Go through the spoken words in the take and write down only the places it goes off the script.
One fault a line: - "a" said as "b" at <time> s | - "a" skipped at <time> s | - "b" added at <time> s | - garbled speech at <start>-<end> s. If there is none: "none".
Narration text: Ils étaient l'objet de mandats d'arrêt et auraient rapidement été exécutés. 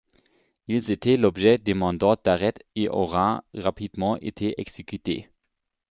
none